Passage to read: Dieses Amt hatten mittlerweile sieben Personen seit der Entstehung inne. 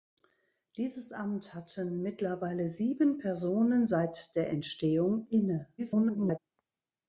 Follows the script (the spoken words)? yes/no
no